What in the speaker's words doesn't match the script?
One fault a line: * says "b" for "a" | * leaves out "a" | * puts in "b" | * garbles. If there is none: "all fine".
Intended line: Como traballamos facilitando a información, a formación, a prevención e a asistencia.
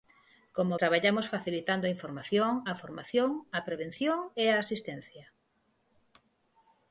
all fine